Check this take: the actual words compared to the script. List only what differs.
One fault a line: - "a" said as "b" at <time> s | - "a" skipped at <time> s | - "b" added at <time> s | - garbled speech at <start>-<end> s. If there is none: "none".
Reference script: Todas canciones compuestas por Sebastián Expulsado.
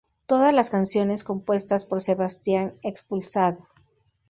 - "las" added at 0.5 s